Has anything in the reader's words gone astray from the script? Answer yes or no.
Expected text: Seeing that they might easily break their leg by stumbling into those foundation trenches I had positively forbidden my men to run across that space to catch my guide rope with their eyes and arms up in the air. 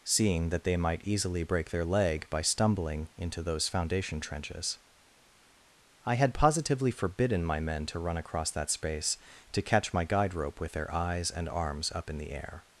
no